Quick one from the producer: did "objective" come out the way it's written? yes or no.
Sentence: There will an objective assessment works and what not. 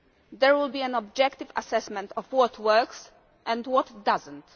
yes